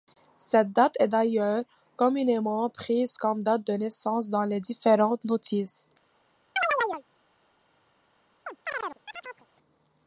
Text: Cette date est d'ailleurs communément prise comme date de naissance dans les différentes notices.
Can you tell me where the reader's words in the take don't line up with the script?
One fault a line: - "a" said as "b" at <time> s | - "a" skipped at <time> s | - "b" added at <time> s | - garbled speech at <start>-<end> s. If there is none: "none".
none